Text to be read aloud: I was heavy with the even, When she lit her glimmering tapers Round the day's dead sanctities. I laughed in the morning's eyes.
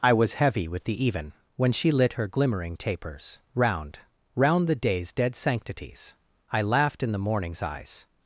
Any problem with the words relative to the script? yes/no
yes